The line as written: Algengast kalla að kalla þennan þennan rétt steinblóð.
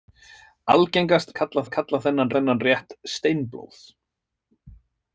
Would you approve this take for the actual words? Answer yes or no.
yes